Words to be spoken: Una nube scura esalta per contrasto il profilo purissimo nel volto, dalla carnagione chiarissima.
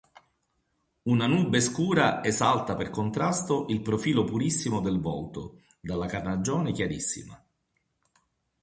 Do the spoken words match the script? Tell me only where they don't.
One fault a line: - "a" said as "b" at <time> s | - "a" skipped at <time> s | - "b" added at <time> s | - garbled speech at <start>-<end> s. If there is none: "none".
- "nel" said as "del" at 4.8 s